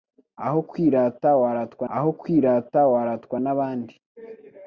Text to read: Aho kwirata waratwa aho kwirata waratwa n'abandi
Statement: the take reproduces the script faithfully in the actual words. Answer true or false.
true